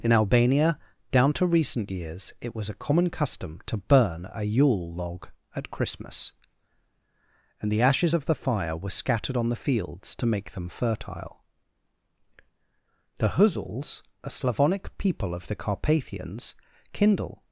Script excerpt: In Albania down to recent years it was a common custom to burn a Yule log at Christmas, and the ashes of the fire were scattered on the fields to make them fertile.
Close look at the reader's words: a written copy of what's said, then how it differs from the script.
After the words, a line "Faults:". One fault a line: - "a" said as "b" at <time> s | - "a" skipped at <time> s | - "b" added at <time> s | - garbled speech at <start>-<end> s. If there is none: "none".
In Albania down to recent years it was a common custom to burn a Yule log at Christmas, and the ashes of the fire were scattered on the fields to make them fertile. The Huzuls, a Slavonic people of the Carpathians, kindle
Faults:
- "The Huzuls a Slavonic people of the Carpathians kindle" added at 13.2 s